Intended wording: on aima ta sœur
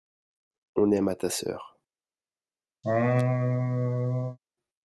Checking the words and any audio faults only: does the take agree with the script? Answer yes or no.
no